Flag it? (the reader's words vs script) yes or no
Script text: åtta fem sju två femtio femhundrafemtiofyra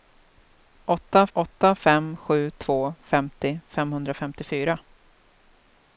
yes